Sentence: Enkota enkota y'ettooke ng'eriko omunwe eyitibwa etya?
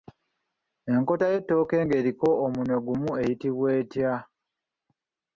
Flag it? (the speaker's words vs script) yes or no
yes